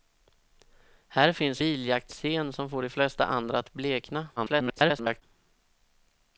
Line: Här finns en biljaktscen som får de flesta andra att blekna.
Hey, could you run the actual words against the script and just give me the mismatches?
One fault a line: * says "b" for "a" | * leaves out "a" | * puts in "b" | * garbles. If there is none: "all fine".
* leaves out "en"
* garbles